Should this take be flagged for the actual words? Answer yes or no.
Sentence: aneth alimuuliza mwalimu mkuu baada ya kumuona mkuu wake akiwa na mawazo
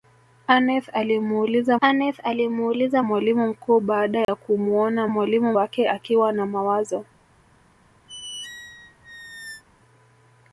yes